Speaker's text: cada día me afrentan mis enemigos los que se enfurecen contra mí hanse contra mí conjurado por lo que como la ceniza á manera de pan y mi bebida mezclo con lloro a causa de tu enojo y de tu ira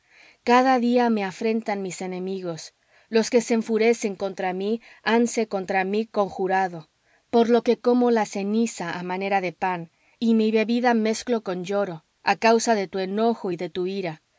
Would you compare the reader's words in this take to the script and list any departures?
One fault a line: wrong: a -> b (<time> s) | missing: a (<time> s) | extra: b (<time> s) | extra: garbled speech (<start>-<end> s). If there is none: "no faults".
no faults